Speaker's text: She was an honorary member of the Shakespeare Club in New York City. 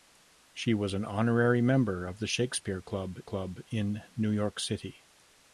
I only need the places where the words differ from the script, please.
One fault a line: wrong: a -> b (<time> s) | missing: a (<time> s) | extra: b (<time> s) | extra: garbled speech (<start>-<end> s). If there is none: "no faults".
extra: Club (3.2 s)